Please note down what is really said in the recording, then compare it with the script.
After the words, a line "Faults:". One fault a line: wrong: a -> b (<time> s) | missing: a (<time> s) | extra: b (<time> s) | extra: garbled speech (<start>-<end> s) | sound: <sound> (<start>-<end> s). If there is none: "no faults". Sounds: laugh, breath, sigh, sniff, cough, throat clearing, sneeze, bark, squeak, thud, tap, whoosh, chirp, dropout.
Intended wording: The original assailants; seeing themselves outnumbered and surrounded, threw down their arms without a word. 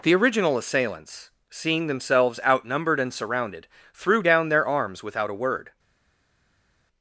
The original assailants; seeing themselves outnumbered and surrounded, threw down their arms without a word.
Faults:
no faults